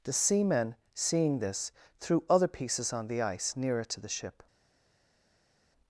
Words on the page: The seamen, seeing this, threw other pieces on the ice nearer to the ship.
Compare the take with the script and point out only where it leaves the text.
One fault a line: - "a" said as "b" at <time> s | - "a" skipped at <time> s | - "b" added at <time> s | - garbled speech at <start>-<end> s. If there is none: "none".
none